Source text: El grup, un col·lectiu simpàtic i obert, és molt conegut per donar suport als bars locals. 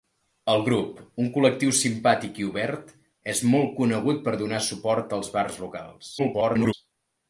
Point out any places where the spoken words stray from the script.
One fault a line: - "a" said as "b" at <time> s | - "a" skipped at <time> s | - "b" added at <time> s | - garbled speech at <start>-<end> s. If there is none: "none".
- garbled speech at 6.2-6.7 s